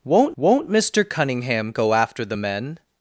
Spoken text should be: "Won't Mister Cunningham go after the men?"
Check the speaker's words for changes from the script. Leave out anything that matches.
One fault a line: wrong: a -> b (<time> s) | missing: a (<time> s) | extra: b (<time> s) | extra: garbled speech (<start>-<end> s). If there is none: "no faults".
extra: won't (0.3 s)